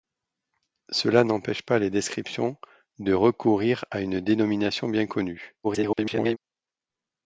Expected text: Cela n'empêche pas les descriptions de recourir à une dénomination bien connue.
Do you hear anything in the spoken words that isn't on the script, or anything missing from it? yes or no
yes